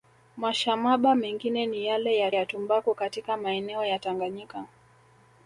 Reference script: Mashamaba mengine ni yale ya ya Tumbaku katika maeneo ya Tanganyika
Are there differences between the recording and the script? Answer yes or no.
no